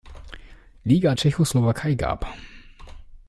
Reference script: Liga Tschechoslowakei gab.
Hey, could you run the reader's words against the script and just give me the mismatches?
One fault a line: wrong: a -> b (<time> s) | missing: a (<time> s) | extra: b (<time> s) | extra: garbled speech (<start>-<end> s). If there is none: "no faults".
no faults